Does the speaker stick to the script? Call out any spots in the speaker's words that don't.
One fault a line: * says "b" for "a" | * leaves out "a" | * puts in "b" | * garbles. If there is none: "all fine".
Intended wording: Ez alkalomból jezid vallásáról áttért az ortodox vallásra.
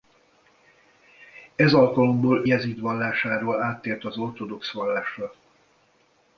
all fine